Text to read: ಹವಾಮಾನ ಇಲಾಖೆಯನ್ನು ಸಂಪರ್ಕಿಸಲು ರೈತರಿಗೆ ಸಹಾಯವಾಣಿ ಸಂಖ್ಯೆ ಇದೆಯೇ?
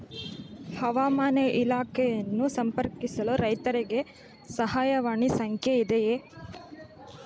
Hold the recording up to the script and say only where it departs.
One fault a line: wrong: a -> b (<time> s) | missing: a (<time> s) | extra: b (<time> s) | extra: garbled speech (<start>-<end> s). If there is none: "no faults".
no faults